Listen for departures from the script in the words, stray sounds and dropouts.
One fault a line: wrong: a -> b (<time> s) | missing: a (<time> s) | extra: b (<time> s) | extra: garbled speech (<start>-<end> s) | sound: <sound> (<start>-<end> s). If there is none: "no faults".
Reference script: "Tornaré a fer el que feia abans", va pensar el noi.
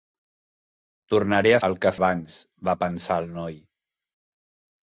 missing: fer (1.6 s)
missing: feia (1.9 s)